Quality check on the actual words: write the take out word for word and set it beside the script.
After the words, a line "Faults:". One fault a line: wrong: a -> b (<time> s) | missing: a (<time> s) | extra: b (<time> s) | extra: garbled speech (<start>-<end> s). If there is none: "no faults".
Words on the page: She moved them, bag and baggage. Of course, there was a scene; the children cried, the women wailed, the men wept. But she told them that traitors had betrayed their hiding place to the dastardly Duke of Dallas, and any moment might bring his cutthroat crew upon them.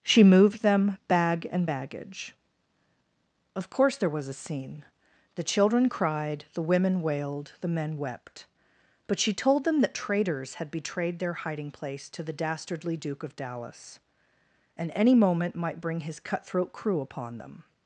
She moved them, bag and baggage. Of course, there was a scene; the children cried, the women wailed, the men wept. But she told them that traitors had betrayed their hiding place to the dastardly Duke of Dallas, and any moment might bring his cutthroat crew upon them.
Faults:
no faults